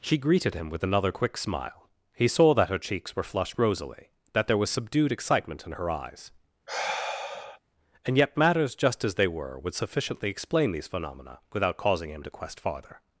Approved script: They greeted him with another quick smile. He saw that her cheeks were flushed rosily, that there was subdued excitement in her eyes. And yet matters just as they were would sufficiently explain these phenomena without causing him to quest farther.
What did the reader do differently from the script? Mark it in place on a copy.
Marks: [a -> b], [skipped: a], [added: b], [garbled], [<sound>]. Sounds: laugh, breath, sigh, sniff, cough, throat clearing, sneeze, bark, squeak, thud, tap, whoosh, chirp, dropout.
[They -> She] greeted him with another quick smile. He saw that her cheeks were flushed rosily, that there was subdued excitement in her eyes. [sigh] And yet matters just as they were would sufficiently explain these phenomena without causing him to quest farther.